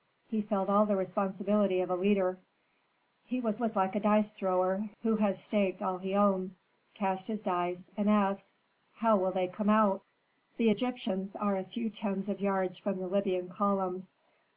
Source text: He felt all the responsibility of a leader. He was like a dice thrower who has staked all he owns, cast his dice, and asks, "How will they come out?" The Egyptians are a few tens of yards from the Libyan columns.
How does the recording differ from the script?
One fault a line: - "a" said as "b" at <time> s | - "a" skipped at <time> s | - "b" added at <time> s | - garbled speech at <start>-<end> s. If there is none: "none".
- "was" added at 3.6 s